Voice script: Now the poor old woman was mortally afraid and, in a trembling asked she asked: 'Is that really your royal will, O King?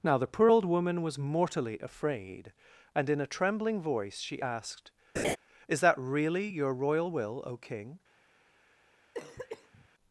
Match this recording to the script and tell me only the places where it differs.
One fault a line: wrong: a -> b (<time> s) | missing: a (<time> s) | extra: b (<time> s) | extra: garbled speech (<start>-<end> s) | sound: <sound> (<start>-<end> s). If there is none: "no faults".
wrong: asked -> voice (3.8 s)
sound: laugh (5.2-5.4 s)
sound: cough (9.1-9.9 s)